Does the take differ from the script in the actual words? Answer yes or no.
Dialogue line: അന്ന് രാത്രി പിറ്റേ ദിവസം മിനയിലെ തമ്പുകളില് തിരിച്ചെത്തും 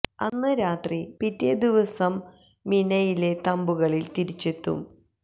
no